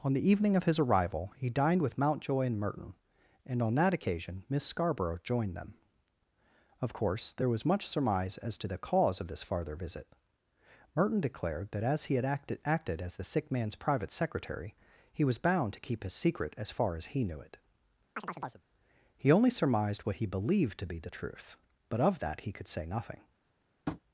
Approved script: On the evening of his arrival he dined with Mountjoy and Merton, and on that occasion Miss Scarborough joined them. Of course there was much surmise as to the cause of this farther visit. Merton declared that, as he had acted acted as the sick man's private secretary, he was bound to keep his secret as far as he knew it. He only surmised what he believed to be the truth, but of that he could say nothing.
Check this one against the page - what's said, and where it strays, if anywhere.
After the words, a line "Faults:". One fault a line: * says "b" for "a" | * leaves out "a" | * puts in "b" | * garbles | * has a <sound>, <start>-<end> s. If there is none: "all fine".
On the evening of his arrival he dined with Mountjoy and Merton, and on that occasion Miss Scarborough joined them. Of course there was much surmise as to the cause of this farther visit. Merton declared that, as he had acted acted as the sick man's private secretary, he was bound to keep his secret as far as he knew it. He only surmised what he believed to be the truth, but of that he could say nothing.
Faults:
* has a chirp, 18.2-18.6 s
* has a tap, 23.9-24.0 s